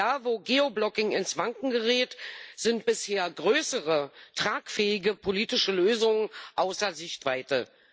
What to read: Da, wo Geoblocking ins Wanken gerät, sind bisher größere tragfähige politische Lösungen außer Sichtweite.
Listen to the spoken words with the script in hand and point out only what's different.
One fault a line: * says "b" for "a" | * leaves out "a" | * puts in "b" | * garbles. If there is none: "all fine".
all fine